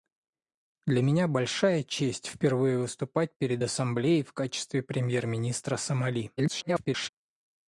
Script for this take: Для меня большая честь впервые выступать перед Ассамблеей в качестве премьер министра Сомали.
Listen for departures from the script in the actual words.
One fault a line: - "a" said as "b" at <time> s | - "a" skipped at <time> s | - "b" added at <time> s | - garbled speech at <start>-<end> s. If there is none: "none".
- garbled speech at 6.4-7.1 s